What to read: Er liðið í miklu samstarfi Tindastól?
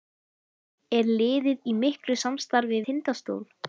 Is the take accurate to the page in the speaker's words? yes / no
yes